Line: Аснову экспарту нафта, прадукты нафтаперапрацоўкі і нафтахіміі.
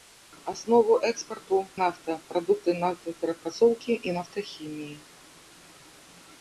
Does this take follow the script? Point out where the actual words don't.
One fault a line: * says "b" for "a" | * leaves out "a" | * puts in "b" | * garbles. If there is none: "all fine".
all fine